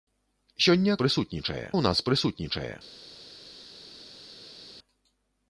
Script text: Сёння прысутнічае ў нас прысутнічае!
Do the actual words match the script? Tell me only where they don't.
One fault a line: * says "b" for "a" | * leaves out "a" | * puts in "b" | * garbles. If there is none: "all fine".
all fine